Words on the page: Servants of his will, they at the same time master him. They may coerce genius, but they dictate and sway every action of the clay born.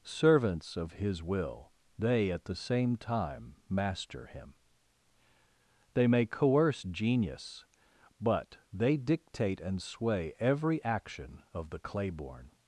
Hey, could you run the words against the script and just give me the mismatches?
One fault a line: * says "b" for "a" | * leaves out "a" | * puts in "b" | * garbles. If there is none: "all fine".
all fine